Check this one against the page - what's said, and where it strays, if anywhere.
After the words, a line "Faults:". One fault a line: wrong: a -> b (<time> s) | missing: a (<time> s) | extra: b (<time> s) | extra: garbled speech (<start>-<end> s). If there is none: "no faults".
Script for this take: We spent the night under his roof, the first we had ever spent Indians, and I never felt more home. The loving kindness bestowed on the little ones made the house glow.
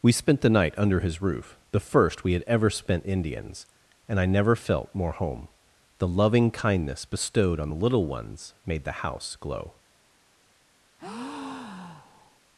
We spent the night under his roof, the first we had ever spent Indians, and I never felt more home. The loving kindness bestowed on the little ones made the house glow.
Faults:
no faults